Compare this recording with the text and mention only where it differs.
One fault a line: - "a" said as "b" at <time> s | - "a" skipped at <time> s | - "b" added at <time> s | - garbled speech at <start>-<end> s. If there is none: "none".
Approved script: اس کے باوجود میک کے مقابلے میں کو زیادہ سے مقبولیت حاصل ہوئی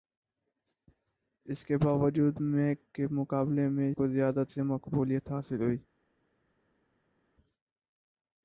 none